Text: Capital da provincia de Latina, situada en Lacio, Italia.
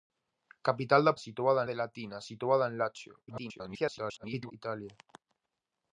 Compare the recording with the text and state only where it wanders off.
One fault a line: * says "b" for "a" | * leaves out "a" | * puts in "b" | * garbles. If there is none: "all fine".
* says "situada" for "provincia"
* garbles